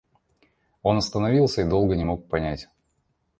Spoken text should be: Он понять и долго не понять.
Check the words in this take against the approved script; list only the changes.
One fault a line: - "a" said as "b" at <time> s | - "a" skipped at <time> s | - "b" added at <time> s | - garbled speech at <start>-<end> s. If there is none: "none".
- "понять" said as "остановился" at 1.0 s
- "мог" added at 2.0 s